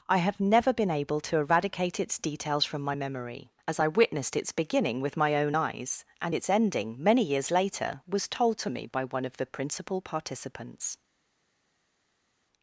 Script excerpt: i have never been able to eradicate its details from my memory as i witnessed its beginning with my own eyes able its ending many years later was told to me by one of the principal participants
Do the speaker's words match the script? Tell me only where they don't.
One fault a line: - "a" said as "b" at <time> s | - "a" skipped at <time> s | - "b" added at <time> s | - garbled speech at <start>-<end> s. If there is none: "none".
- "able" said as "and" at 6.2 s